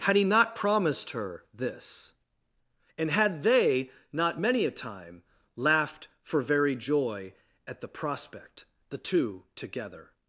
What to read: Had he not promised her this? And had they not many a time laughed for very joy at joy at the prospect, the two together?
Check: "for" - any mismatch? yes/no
no